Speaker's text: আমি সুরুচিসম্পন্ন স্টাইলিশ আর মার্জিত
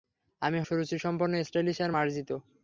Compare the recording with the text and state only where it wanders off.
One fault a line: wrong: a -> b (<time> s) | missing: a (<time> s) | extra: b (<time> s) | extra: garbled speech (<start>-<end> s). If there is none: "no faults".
no faults